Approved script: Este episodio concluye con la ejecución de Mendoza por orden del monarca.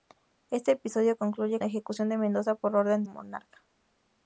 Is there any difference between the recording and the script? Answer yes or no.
yes